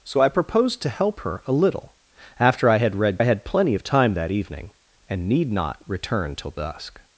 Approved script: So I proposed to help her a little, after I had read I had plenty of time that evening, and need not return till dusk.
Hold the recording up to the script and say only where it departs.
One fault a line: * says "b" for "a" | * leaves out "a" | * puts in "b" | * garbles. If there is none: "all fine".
all fine